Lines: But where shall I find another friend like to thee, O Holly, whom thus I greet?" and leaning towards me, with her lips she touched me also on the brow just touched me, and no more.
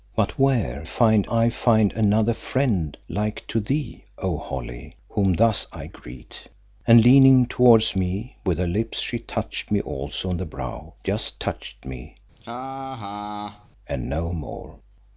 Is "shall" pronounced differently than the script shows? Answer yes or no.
yes